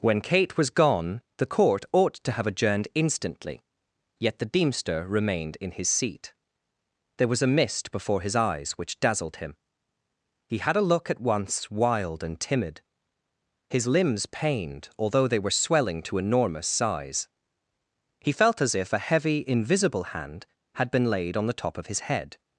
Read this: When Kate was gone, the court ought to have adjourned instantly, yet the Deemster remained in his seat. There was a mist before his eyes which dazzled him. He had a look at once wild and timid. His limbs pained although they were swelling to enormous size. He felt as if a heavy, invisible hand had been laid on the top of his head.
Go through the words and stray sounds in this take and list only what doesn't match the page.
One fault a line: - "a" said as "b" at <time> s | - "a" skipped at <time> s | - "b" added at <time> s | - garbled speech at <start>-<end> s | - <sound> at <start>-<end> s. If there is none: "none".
none